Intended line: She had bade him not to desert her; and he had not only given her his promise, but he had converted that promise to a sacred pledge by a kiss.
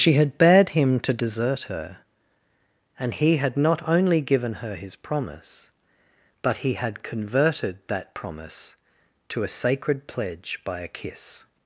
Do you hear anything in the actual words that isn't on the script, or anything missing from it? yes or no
yes